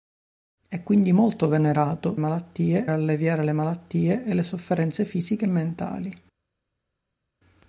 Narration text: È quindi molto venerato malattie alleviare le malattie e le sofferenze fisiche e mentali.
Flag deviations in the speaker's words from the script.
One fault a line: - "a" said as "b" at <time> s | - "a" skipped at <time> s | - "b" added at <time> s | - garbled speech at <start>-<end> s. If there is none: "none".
none